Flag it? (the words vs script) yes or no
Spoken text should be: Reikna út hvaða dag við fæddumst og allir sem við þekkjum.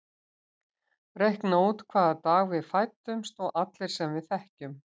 no